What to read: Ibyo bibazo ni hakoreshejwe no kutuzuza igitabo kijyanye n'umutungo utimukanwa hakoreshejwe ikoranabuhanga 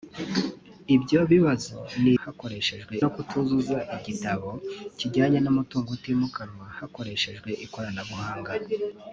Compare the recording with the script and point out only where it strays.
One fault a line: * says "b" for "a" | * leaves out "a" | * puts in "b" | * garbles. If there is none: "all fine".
all fine